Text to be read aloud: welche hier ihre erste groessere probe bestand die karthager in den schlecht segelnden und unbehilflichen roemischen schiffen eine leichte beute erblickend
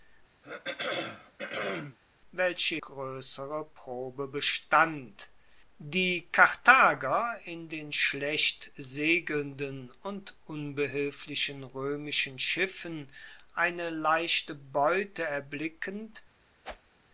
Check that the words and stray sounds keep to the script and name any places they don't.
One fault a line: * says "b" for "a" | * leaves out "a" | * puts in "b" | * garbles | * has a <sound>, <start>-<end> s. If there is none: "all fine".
* has a throat clearing, 0.4-2.0 s
* leaves out "hier ihre erste"
* has a whoosh, 16.6-16.9 s